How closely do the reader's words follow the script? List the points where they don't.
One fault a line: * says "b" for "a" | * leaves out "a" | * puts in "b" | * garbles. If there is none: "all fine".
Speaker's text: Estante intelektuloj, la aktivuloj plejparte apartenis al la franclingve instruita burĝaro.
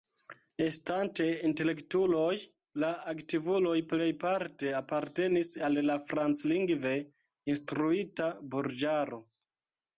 all fine